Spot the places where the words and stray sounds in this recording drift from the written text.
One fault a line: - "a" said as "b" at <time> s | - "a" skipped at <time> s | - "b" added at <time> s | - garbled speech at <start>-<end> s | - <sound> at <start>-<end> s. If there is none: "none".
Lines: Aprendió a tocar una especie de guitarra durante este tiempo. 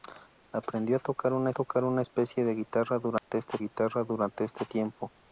- "tocar una" added at 1.5 s
- dropout at 3.2-3.3 s
- "guitarra durante este" added at 3.6 s